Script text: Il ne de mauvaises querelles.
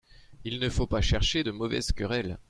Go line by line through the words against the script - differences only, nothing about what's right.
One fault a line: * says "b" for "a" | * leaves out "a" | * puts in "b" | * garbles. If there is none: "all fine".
* puts in "faut pas chercher"